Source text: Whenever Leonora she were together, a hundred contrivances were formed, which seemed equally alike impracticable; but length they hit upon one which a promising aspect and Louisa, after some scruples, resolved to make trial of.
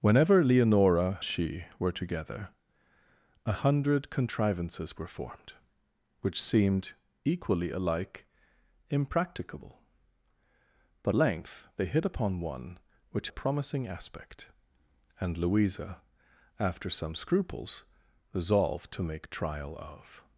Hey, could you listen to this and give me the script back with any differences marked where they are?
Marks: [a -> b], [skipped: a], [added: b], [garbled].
Whenever Leonora she were together, a hundred contrivances were formed, which seemed equally alike impracticable; but length they hit upon one which a promising aspect and Louisa, after some scruples, resolved to make trial of.